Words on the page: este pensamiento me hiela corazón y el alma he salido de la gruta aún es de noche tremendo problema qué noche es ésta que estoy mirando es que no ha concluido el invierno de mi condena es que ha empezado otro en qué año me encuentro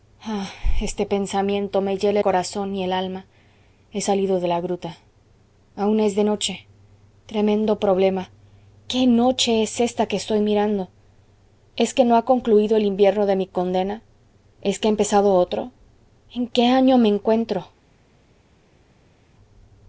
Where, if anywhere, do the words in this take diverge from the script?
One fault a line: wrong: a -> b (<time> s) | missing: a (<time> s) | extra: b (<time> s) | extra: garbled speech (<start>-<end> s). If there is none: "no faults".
no faults